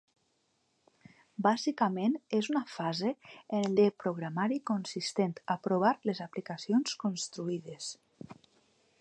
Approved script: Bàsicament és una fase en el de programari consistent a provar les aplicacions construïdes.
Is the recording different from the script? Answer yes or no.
no